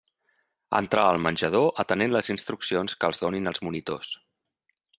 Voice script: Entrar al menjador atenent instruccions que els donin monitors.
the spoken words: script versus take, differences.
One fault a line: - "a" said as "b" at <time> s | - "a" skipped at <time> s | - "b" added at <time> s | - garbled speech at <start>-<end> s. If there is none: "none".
- "les" added at 2.2 s
- "els" added at 3.5 s